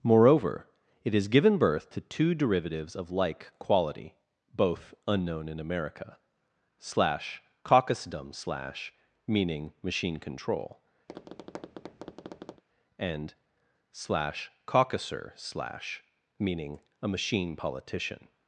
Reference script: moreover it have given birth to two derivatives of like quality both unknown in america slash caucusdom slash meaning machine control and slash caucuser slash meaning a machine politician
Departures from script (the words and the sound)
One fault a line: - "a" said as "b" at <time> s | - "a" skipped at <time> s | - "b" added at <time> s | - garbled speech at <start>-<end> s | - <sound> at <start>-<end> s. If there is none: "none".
- "have" said as "has" at 1.1 s
- tap at 11.1-12.6 s